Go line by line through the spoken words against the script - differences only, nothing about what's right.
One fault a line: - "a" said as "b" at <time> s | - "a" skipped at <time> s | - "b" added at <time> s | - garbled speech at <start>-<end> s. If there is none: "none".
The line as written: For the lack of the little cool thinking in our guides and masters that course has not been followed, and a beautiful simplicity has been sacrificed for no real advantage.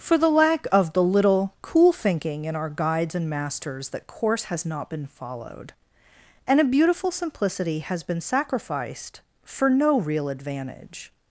none